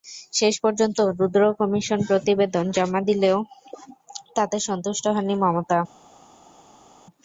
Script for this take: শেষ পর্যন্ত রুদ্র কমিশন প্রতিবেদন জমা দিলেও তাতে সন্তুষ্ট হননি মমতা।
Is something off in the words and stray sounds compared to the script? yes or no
no